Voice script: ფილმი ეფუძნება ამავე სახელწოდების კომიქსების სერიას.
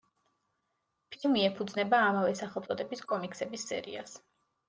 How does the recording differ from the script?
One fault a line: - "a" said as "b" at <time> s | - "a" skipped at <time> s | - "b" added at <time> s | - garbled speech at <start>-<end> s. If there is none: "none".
none